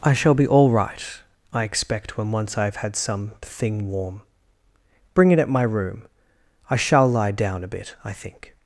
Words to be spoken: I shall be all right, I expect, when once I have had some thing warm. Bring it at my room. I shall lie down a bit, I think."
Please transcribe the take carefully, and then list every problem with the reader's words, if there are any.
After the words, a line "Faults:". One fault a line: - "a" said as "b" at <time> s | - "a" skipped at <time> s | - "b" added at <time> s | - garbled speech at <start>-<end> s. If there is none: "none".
I shall be all right, I expect, when once I have had some thing warm. Bring it at my room. I shall lie down a bit, I think."
Faults:
none